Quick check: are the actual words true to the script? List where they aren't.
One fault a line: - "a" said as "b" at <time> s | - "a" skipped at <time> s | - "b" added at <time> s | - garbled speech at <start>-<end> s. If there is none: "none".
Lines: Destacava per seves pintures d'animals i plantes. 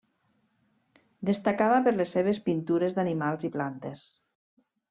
- "les" added at 2.0 s